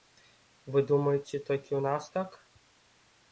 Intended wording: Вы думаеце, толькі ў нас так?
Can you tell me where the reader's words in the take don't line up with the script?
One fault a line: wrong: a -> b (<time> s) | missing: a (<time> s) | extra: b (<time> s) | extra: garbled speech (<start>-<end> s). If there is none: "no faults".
no faults